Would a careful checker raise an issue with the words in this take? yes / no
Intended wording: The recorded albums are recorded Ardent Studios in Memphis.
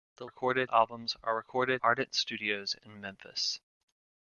no